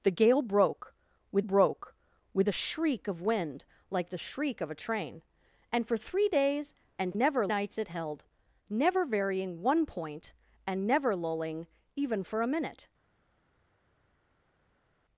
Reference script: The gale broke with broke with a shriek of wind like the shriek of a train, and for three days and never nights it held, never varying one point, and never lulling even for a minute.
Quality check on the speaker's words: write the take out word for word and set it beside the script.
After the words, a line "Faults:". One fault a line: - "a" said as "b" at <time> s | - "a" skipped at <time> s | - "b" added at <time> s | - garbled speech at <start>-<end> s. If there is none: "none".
The gale broke with broke with a shriek of wind like the shriek of a train, and for three days and never nights it held, never varying one point, and never lulling even for a minute.
Faults:
none